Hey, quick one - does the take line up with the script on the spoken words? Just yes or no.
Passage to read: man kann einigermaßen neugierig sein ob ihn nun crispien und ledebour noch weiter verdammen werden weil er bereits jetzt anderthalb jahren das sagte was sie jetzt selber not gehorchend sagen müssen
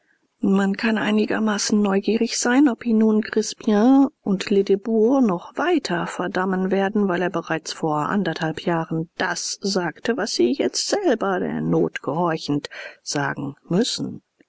no